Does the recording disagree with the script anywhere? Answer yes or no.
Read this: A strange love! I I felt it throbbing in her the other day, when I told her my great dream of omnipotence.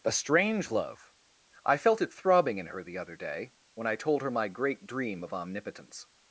yes